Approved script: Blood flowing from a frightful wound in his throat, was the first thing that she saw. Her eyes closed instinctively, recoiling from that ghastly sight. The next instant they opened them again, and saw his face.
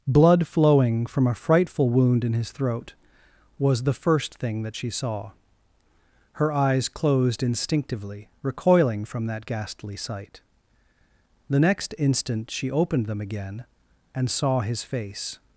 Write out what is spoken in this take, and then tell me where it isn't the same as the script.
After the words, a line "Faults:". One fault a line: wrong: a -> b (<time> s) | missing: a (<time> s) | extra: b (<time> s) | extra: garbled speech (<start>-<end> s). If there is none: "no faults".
Blood flowing from a frightful wound in his throat, was the first thing that she saw. Her eyes closed instinctively, recoiling from that ghastly sight. The next instant she opened them again, and saw his face.
Faults:
wrong: they -> she (12.5 s)